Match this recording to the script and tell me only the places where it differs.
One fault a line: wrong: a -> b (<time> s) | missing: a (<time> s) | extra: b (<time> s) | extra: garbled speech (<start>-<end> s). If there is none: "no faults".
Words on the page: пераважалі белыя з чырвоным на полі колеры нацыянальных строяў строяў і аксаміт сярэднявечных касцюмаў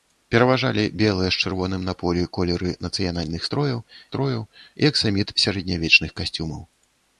no faults